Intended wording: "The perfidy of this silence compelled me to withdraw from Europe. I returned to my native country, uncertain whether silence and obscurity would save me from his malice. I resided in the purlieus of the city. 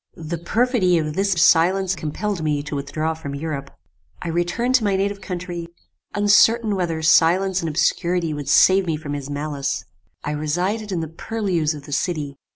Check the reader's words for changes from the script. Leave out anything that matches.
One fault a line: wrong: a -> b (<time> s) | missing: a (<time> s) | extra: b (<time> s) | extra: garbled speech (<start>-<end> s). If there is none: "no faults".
no faults